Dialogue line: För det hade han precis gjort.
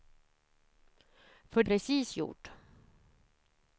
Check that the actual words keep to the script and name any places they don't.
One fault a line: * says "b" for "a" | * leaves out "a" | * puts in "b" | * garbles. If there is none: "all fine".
* leaves out "det hade han"